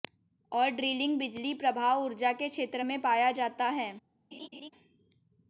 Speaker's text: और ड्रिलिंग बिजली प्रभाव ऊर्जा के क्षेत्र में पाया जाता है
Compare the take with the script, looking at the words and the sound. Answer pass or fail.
fail